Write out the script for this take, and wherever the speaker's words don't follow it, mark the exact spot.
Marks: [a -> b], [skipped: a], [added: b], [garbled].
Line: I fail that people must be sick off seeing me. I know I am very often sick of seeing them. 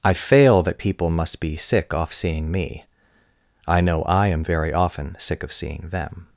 I fail that people must be sick off seeing me. I know I am very often sick of seeing them.